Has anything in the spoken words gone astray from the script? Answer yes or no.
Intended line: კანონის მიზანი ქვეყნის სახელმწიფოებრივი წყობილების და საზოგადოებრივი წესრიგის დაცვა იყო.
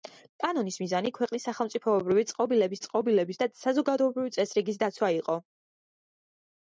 yes